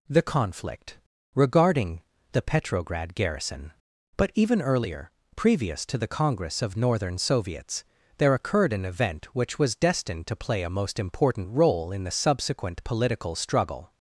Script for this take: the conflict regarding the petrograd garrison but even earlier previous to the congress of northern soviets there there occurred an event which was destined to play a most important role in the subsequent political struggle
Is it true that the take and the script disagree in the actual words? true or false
true